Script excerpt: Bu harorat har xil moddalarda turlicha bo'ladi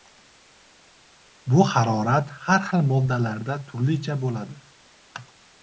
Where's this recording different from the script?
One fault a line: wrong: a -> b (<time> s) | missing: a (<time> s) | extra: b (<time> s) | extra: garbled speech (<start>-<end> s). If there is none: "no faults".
no faults